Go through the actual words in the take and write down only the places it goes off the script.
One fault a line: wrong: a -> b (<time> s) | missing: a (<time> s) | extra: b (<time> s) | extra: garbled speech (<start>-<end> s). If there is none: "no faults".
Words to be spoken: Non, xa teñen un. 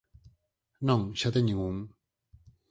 no faults